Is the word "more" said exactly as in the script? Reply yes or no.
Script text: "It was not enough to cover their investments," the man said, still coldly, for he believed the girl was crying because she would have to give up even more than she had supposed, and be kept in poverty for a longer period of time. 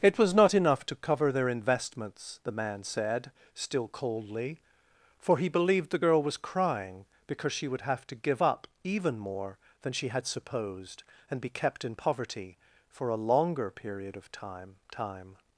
yes